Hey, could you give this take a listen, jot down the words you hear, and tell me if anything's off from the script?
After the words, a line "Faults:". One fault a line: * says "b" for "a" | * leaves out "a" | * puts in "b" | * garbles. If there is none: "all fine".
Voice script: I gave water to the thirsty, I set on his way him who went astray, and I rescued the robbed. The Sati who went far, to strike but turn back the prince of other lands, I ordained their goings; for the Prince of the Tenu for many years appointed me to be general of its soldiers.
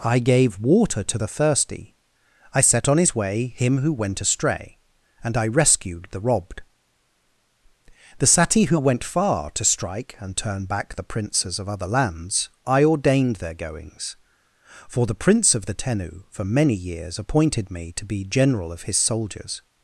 I gave water to the thirsty, I set on his way him who went astray, and I rescued the robbed. The Sati who went far, to strike and turn back the princes of other lands, I ordained their goings; for the Prince of the Tenu for many years appointed me to be general of his soldiers.
Faults:
* says "and" for "but"
* says "princes" for "prince"
* says "his" for "its"